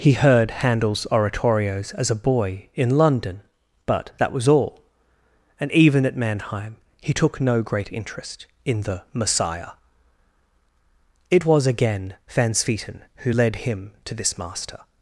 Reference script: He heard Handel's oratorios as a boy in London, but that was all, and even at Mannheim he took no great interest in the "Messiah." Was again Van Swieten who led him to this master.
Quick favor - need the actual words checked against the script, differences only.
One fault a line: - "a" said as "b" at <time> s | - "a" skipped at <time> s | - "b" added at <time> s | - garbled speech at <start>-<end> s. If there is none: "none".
- "It" added at 11.3 s